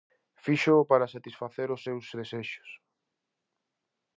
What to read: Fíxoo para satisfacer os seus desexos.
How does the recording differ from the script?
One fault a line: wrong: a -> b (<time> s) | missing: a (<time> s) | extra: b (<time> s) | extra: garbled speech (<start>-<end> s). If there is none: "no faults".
no faults